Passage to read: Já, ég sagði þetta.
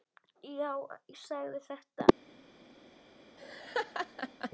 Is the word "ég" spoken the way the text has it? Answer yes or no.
no